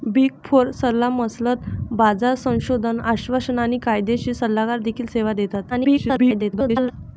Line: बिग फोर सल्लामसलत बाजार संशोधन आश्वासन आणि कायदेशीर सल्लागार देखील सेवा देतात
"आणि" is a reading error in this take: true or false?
false